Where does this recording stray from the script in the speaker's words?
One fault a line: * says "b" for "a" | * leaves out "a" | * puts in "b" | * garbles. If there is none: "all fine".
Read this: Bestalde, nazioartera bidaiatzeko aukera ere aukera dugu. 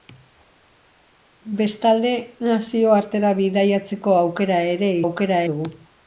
all fine